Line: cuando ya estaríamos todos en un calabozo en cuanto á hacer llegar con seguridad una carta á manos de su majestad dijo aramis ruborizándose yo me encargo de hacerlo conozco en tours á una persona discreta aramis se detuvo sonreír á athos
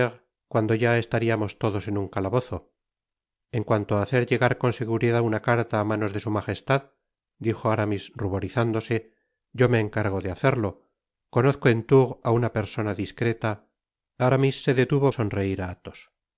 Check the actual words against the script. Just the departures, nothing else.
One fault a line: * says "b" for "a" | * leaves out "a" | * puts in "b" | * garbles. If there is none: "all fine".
all fine